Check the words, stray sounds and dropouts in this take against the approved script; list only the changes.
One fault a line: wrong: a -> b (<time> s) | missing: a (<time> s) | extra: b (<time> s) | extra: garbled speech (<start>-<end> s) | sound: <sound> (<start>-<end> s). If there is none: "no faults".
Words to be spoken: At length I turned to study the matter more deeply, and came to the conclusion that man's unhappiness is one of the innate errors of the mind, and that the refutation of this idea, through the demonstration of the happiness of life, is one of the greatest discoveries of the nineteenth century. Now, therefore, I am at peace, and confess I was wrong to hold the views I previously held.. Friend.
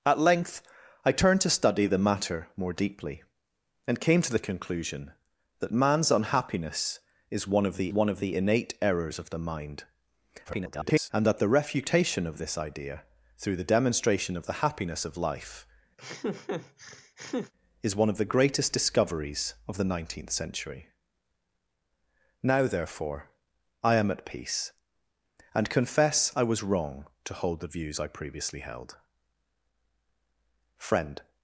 extra: one of the (7.9 s)
extra: garbled speech (10.4-11.1 s)
sound: laugh (16.0-17.5 s)